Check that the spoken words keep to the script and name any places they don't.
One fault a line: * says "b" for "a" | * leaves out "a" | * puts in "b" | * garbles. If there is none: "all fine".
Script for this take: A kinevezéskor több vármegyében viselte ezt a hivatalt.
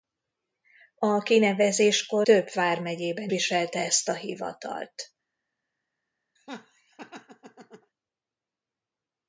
all fine